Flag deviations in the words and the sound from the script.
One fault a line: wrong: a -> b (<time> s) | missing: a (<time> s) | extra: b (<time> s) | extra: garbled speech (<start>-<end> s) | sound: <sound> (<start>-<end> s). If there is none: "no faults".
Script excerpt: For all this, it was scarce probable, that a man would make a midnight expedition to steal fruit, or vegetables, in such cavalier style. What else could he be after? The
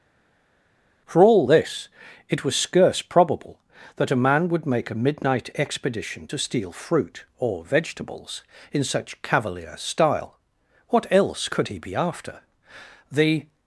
no faults